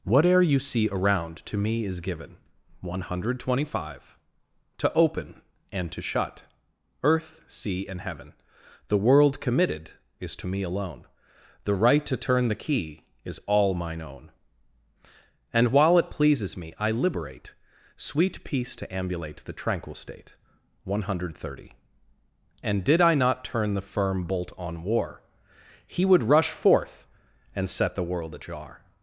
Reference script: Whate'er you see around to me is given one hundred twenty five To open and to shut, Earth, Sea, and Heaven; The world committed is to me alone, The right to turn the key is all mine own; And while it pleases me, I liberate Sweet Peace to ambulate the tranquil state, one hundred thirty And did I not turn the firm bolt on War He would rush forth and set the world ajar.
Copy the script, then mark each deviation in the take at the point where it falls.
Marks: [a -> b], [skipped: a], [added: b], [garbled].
Whate'er you see around to me is given one hundred twenty five To open and to shut, Earth, Sea, and Heaven; The world committed is to me alone, The right to turn the key is all mine own; And while it pleases me, I liberate Sweet Peace to ambulate the tranquil state, one hundred thirty And did I not turn the firm bolt on War He would rush forth and set the world ajar.